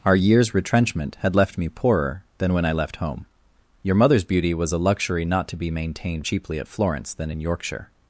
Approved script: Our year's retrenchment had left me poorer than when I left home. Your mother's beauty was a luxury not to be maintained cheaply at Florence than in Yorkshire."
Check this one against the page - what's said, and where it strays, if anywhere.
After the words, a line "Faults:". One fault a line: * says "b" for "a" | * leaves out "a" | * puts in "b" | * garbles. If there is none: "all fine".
Our year's retrenchment had left me poorer than when I left home. Your mother's beauty was a luxury not to be maintained cheaply at Florence than in Yorkshire."
Faults:
all fine